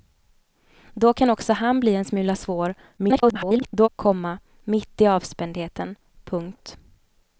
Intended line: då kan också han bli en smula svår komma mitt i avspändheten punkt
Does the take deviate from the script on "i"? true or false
false